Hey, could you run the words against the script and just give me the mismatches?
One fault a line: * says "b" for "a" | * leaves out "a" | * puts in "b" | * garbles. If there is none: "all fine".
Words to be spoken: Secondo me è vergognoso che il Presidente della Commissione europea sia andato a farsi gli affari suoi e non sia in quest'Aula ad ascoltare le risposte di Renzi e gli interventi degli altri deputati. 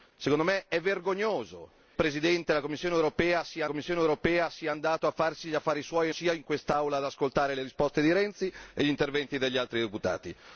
* leaves out "che il"
* puts in "Commissione europea sia"
* leaves out "non"